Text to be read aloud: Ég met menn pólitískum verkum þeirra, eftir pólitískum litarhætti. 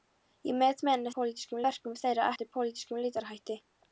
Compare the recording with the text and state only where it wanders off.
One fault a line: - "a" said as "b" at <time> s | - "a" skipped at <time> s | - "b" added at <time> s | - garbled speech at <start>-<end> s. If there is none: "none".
none